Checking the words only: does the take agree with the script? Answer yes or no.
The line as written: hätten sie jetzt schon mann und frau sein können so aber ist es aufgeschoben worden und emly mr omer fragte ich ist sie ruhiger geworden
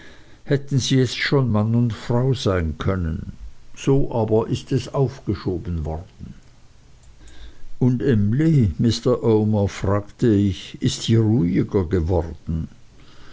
yes